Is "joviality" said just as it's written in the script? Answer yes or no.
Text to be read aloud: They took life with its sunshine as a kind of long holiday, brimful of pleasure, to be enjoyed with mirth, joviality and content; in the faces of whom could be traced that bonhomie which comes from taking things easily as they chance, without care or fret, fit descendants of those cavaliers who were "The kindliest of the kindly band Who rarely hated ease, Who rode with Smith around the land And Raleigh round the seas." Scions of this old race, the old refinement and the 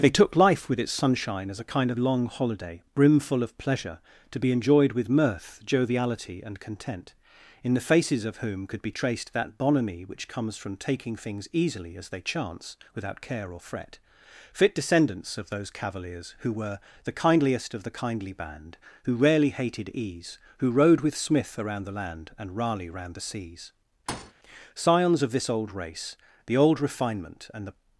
yes